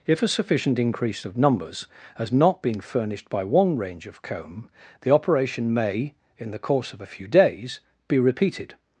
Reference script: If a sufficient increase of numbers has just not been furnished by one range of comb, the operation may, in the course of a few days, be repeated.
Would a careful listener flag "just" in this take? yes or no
yes